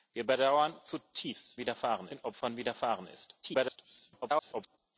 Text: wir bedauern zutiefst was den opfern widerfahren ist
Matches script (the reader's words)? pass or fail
fail